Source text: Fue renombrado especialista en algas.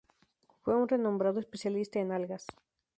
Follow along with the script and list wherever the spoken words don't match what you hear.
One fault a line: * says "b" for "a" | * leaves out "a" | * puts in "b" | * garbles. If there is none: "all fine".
* puts in "un"